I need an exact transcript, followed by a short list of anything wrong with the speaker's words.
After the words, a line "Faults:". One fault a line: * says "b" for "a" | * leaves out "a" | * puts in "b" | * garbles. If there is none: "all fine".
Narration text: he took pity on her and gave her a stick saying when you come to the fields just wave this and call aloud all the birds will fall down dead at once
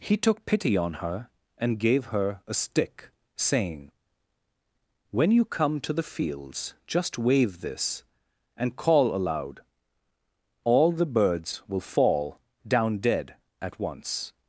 he took pity on her and gave her a stick saying when you come to the fields just wave this and call aloud all the birds will fall down dead at once
Faults:
all fine